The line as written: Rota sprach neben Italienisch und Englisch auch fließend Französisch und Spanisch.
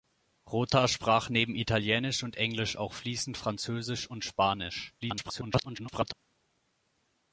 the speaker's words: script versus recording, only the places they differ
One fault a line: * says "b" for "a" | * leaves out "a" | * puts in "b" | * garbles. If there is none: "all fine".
* garbles